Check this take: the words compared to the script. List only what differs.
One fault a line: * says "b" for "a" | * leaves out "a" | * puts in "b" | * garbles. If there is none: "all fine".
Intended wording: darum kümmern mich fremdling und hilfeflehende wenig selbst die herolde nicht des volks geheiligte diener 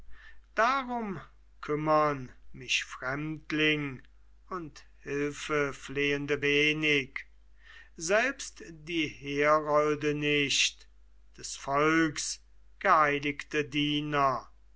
all fine